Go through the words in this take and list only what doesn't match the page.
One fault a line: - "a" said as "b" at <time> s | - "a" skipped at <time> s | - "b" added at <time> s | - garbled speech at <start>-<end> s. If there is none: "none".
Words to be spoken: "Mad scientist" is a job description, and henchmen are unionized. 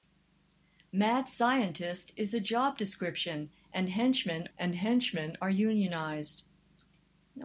- "and henchmen" added at 4.6 s